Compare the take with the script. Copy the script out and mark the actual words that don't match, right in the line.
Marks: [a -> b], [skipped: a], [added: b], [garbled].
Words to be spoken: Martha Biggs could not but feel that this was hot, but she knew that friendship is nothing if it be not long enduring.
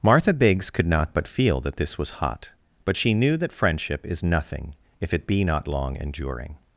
Martha Biggs could not but feel that this was hot, but she knew that friendship is nothing if it be not long enduring.